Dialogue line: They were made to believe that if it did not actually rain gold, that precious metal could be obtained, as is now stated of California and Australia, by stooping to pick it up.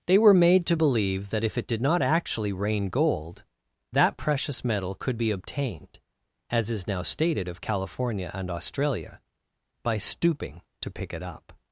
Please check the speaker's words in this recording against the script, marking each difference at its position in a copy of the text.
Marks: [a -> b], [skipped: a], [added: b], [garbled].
They were made to believe that if it did not actually rain gold, that precious metal could be obtained, as is now stated of California and Australia, by stooping to pick it up.